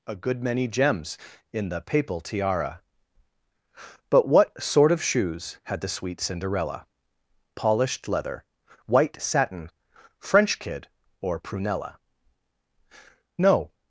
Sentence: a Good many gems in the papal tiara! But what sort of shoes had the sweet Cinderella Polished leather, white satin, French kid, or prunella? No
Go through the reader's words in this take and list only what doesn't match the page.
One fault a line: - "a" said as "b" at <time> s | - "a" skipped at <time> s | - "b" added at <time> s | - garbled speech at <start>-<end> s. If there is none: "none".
none